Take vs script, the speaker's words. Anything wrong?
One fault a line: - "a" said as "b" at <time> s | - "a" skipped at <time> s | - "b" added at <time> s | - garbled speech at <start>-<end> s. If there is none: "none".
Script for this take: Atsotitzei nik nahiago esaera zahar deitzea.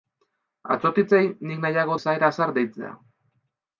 none